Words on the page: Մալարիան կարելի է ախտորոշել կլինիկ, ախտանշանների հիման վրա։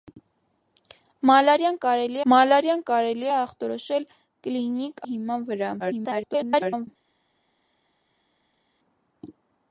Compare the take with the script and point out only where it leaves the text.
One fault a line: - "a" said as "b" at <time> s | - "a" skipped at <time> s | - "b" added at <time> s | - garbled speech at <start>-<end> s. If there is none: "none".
- "մալարիան կարելի" added at 2.3 s
- "ախտանշանների" skipped at 5.0 s
- garbled speech at 5.8-6.9 s